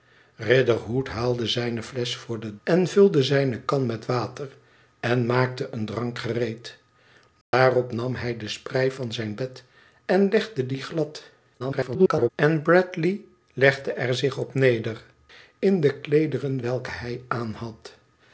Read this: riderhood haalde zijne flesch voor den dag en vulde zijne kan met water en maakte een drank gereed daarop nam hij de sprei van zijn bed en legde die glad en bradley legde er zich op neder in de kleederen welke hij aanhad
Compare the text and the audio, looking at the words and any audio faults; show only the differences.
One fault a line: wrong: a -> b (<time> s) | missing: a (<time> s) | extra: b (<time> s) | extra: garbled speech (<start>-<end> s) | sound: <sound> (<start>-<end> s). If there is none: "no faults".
missing: dag (2.6 s)
sound: dropout (7.4-7.5 s)
extra: garbled speech (11.6-12.3 s)